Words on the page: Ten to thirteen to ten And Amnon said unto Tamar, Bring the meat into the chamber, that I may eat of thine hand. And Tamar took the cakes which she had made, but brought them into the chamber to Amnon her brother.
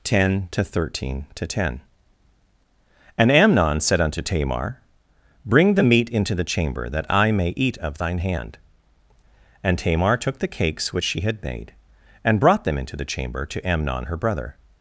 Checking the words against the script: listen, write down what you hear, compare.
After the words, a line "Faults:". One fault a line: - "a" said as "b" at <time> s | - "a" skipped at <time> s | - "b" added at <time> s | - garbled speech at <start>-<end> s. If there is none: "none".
Ten to thirteen to ten And Amnon said unto Tamar, Bring the meat into the chamber, that I may eat of thine hand. And Tamar took the cakes which she had made, and brought them into the chamber to Amnon her brother.
Faults:
- "but" said as "and" at 12.2 s